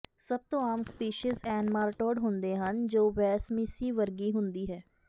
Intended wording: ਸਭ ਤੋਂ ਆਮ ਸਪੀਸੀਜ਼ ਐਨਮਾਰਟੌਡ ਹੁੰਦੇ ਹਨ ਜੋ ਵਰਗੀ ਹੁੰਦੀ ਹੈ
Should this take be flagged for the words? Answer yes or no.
yes